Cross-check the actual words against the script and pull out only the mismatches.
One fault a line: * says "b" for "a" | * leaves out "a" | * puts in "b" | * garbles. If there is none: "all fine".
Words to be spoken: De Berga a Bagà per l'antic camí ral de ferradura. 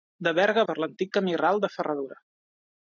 * leaves out "Bagà"